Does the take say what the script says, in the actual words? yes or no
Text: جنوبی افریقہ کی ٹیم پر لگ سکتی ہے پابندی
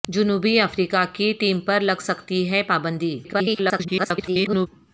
no